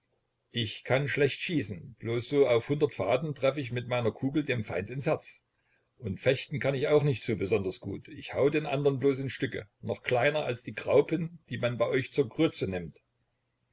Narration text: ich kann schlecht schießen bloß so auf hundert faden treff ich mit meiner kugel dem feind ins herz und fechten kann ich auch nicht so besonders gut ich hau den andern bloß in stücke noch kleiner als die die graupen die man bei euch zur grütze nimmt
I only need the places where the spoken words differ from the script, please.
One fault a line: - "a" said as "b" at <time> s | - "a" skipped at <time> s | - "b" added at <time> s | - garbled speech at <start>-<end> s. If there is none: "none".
- "die" skipped at 10.8 s